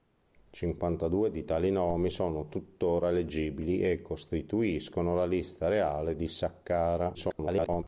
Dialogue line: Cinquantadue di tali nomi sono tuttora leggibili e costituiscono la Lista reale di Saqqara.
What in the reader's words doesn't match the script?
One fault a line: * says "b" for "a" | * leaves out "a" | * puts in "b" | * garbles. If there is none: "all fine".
* garbles